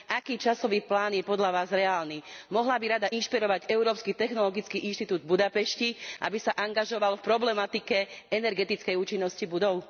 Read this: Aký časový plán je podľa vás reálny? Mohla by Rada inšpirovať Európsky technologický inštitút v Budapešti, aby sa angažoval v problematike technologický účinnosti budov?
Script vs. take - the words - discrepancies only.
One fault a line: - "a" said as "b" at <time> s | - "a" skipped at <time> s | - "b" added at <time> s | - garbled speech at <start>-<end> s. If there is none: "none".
- "technologický" said as "energetickej" at 8.3 s